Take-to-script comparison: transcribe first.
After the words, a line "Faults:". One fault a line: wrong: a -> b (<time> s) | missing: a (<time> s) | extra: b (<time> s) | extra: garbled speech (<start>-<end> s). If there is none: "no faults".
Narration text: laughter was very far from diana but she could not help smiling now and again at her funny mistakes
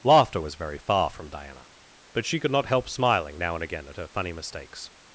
laughter was very far from diana but she could not help smiling now and again at her funny mistakes
Faults:
no faults